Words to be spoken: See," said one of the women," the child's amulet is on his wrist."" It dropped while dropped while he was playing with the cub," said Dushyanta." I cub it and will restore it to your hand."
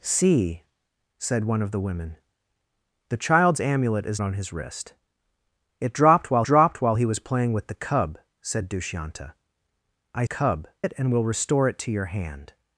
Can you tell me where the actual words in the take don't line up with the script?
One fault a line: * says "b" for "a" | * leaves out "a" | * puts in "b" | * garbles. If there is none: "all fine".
all fine